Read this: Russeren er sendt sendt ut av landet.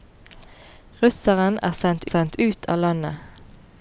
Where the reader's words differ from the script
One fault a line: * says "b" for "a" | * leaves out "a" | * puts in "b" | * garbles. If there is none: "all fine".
all fine